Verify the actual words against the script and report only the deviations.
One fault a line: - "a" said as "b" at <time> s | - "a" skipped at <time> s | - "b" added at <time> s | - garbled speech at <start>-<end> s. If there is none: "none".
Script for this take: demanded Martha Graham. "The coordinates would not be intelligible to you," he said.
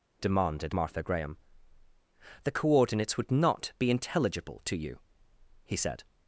none